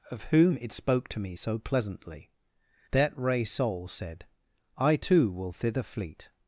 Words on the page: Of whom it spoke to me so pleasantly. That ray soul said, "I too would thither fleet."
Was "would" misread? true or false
true